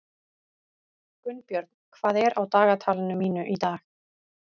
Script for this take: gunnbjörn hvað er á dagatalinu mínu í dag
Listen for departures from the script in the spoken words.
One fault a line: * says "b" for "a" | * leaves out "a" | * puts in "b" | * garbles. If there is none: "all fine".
all fine